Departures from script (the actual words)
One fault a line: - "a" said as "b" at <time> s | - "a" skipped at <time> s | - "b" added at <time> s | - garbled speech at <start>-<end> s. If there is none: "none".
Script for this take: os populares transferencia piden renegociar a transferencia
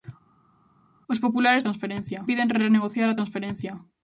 none